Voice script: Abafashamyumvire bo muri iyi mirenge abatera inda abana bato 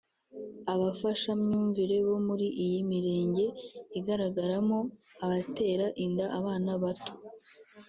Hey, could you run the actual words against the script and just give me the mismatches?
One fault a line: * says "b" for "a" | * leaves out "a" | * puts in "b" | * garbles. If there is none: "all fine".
* puts in "igaragaramo"